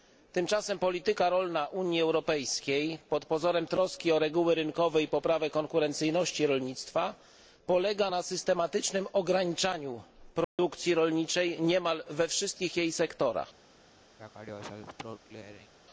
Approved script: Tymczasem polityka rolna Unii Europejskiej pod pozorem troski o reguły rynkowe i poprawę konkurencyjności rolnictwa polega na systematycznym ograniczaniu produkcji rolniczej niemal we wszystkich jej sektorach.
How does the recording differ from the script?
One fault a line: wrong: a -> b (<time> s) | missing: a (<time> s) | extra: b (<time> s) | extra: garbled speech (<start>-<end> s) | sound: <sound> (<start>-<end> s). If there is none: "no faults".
sound: dropout (10.4-10.6 s)
sound: throat clearing (14.2-15.7 s)